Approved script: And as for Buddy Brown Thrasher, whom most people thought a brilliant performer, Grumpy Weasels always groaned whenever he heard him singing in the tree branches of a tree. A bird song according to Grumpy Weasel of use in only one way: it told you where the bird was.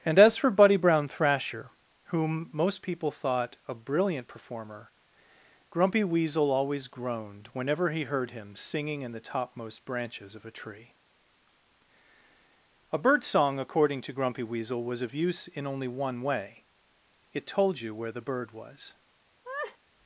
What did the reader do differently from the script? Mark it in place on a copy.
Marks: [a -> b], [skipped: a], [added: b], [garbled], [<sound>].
And as for Buddy Brown Thrasher, whom most people thought a brilliant performer, Grumpy [Weasels -> Weasel] always groaned whenever he heard him singing in the [tree -> topmost] branches of a tree. A bird song according to Grumpy Weasel [added: was] of use in only one way: it told you where the bird was. [laugh]